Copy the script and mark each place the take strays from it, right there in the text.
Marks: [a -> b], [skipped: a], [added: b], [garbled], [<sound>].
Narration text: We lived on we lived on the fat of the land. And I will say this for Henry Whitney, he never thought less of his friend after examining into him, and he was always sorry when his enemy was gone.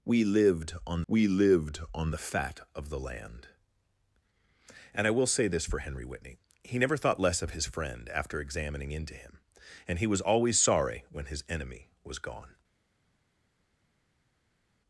We lived on we lived on the fat of the land. And I will say this for Henry Whitney, he never thought less of his friend after examining into him, and he was always sorry when his enemy was gone.